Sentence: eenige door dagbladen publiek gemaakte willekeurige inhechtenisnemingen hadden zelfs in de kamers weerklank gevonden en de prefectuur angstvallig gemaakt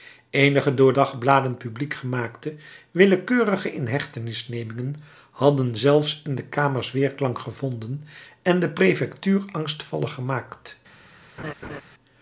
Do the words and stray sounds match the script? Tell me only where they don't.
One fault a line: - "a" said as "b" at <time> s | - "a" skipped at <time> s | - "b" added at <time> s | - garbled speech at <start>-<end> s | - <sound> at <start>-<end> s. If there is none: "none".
- laugh at 11.4-11.8 s